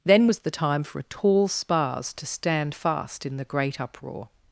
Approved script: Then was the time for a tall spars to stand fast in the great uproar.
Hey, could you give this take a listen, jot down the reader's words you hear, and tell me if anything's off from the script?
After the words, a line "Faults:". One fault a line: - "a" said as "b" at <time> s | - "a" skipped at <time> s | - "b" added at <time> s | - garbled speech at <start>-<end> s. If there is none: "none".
Then was the time for a tall spars to stand fast in the great uproar.
Faults:
none